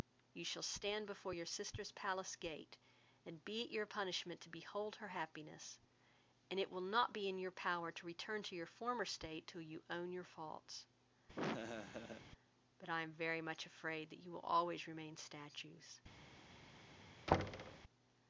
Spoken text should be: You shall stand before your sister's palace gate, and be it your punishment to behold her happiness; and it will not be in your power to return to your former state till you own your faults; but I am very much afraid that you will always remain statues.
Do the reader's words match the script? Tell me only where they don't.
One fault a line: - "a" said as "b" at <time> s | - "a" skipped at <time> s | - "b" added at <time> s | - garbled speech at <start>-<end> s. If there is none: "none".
none